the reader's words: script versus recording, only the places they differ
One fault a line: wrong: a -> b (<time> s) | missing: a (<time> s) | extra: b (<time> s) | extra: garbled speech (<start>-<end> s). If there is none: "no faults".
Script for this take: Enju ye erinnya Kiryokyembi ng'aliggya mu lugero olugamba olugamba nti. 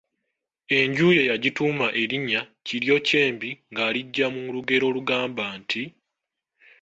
extra: yagituuma (1.3 s)
missing: olugamba (5.4 s)